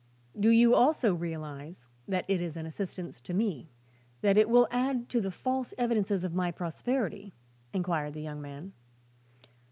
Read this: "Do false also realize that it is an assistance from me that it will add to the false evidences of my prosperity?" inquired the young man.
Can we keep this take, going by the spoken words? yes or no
no